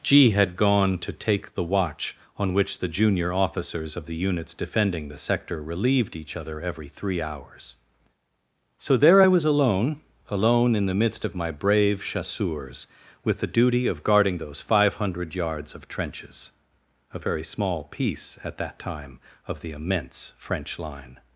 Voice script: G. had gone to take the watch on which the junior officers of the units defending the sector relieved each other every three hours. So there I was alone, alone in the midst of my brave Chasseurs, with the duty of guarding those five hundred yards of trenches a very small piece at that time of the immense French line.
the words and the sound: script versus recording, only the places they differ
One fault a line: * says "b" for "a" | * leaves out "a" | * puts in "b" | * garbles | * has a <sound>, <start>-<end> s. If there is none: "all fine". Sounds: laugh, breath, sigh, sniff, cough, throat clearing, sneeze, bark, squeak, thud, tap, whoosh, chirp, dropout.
all fine